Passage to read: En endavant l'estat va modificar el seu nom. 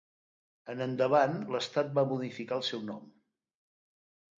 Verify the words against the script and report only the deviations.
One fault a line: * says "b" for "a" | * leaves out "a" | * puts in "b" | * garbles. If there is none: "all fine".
all fine